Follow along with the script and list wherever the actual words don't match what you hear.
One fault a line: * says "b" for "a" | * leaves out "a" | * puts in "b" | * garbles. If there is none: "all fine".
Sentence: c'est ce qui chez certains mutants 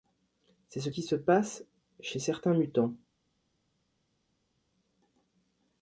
* puts in "se passe"